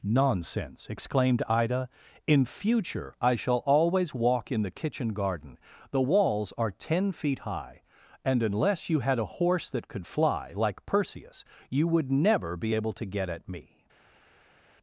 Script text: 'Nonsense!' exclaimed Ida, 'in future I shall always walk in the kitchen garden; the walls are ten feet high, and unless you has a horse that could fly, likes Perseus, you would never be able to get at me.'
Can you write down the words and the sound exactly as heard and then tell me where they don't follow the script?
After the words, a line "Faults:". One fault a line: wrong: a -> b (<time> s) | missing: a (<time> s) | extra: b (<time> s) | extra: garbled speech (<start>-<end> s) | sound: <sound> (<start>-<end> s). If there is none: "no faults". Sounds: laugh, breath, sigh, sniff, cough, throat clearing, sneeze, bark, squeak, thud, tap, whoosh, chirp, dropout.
'Nonsense!' exclaimed Ida, 'in future I shall always walk in the kitchen garden; the walls are ten feet high, and unless you had a horse that could fly, like Perseus, you would never be able to get at me.'
Faults:
wrong: has -> had (9.0 s)
wrong: likes -> like (10.5 s)